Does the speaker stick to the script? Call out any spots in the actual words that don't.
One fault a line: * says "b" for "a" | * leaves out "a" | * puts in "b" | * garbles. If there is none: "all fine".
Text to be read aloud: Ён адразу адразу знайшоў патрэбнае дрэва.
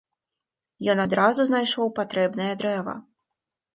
* leaves out "адразу"